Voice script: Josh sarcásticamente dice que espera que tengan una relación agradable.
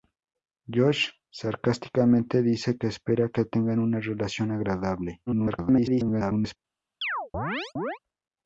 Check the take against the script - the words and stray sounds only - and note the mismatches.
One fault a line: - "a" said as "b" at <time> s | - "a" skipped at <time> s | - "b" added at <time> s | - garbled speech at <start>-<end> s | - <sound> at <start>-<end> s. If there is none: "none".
- garbled speech at 5.3-6.6 s
- chirp at 7.0-8.0 s